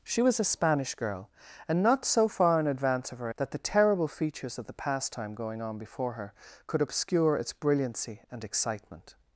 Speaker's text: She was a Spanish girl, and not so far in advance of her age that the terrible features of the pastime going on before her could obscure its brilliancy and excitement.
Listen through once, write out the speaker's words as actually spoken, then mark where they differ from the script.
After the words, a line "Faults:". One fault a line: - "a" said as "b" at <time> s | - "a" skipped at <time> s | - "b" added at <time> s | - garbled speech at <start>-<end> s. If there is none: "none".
She was a Spanish girl, and not so far in advance of her that the terrible features of the pastime going on before her could obscure its brilliancy and excitement.
Faults:
- "age" skipped at 3.3 s